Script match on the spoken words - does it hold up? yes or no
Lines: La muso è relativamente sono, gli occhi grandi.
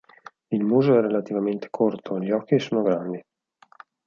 no